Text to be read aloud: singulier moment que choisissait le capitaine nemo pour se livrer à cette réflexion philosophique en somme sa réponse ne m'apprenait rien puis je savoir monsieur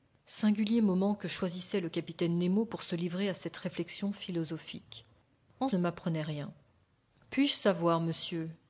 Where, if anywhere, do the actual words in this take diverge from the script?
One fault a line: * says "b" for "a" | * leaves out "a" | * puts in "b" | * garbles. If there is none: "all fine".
* leaves out "somme sa réponse"